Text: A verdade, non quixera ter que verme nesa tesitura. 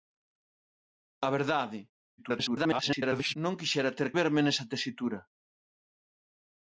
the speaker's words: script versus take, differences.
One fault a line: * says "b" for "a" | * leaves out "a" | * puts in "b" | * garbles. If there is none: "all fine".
* garbles
* leaves out "que"